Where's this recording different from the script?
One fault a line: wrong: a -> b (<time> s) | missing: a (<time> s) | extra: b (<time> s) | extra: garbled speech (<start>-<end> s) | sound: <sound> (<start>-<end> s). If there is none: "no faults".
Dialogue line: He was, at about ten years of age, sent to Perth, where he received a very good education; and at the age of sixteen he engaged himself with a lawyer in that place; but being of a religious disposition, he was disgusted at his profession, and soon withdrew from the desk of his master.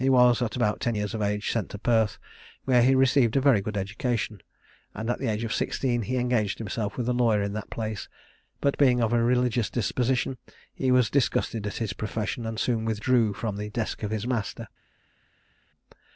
no faults